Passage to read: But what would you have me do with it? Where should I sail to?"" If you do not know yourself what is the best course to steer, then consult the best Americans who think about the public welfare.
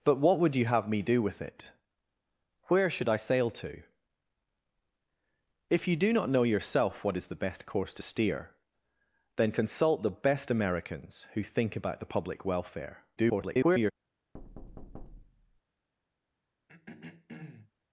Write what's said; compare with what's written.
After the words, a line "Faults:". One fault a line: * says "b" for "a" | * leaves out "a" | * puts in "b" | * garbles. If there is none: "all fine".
But what would you have me do with it? Where should I sail to?"" If you do not know yourself what is the best course to steer, then consult the best Americans who think about the public welfare. [garbled]
Faults:
* garbles